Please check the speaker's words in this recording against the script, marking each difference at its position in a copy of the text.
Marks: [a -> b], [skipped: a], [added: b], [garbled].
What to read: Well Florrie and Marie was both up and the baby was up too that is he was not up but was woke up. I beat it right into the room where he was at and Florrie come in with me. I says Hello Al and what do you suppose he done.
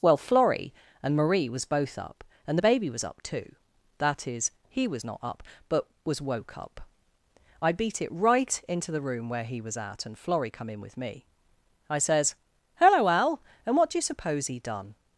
Well Florrie and Marie was both up and the baby was up too that is he was not up but was woke up. I beat it right into the room where he was at and Florrie come in with me. I says Hello Al and what do you suppose he done.